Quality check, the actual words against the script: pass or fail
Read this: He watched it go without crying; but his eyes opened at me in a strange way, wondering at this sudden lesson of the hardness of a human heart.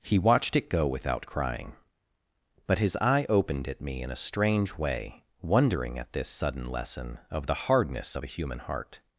fail